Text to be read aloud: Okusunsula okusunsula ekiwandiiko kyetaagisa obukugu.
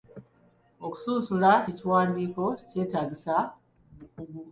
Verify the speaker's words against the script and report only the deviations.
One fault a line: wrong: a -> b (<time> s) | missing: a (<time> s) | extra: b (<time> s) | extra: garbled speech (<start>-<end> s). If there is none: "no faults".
missing: okusunsula (1.5 s)